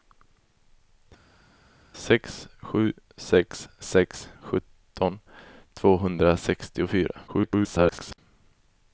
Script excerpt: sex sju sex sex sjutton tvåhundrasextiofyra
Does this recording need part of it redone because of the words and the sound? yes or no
yes